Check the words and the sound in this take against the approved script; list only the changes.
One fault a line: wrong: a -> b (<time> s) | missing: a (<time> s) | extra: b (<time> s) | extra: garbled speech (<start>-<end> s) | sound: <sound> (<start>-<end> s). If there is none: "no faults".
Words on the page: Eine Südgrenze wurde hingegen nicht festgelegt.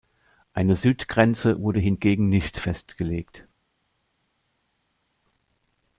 no faults